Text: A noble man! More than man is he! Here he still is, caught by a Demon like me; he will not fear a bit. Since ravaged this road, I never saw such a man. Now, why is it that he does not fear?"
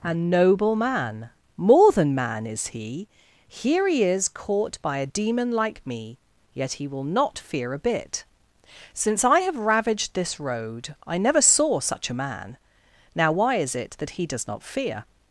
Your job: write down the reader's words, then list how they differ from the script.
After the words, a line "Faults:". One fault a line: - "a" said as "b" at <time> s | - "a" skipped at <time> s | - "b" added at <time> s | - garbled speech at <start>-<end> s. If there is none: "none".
A noble man! More than man is he! Here he is, caught by a Demon like me; yet he will not fear a bit. Since I have ravaged this road, I never saw such a man. Now, why is it that he does not fear?"
Faults:
- "still" skipped at 4.0 s
- "yet" added at 6.5 s
- "I have" added at 9.2 s